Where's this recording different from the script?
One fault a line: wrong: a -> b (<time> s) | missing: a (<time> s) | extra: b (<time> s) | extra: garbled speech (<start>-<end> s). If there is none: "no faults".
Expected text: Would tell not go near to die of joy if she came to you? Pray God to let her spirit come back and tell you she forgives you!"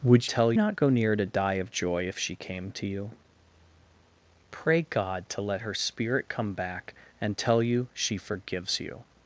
no faults